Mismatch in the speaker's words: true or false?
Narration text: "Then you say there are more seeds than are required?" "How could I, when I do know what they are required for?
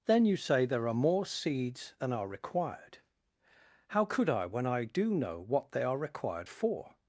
false